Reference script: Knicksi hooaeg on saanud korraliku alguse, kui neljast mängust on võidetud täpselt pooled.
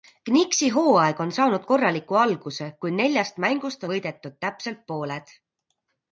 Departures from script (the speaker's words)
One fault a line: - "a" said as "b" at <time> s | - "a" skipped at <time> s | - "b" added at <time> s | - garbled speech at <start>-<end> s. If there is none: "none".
- "on" skipped at 3.9 s